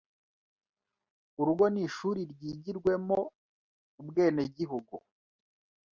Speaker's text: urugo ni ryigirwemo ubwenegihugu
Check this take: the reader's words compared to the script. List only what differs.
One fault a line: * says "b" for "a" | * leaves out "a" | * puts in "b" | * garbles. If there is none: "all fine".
* puts in "ishuri"